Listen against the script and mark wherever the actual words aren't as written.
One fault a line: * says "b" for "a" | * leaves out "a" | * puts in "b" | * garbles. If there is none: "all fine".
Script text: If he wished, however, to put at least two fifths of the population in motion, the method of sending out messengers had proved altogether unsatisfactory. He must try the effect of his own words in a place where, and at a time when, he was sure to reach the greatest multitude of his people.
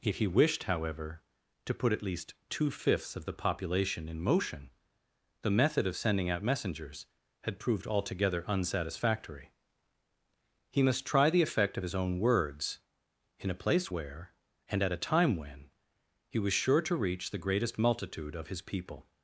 all fine